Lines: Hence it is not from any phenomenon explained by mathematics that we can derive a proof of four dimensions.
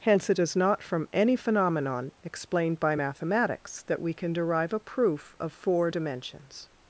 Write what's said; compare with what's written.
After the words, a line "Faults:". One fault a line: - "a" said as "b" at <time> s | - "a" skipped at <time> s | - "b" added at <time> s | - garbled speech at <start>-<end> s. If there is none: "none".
Hence it is not from any phenomenon explained by mathematics that we can derive a proof of four dimensions.
Faults:
none